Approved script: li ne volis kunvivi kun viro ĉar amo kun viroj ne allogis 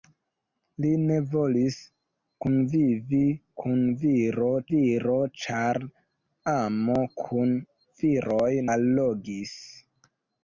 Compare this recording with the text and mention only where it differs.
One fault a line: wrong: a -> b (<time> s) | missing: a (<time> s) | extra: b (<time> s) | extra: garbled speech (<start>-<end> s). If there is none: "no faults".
extra: viro (4.7 s)
missing: ne (8.5 s)